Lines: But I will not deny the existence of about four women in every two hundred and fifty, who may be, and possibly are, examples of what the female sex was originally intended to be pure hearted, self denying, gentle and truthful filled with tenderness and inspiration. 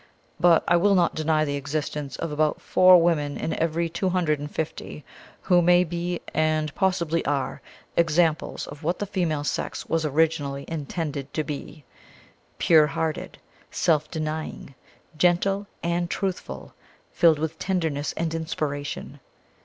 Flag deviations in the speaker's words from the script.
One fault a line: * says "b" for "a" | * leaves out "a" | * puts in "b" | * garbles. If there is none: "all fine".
all fine